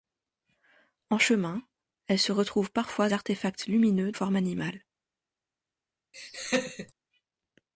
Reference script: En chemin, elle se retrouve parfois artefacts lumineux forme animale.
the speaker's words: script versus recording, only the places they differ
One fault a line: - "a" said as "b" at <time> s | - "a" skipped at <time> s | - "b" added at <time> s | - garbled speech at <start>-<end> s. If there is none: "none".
none